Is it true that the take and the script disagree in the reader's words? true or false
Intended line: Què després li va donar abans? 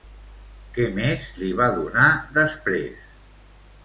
true